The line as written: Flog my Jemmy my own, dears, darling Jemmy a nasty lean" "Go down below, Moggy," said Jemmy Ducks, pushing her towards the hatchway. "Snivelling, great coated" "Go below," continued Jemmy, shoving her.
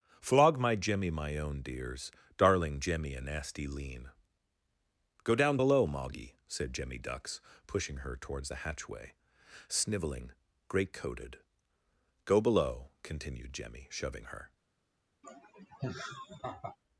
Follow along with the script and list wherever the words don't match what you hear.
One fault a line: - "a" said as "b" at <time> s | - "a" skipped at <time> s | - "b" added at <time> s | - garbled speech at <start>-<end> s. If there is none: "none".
none